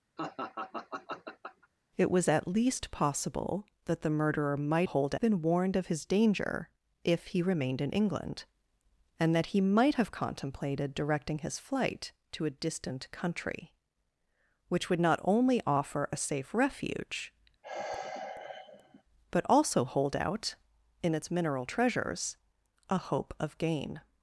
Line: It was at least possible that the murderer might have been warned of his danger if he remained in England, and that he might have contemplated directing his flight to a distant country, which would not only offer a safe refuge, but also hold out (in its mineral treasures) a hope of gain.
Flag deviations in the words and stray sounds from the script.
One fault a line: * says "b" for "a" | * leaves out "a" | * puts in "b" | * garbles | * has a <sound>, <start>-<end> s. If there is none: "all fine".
* has a laugh, 0.2-1.7 s
* says "hold" for "have"
* has a sigh, 17.6-19.0 s